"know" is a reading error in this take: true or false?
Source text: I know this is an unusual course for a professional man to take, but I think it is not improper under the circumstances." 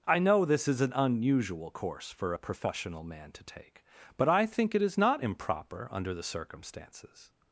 false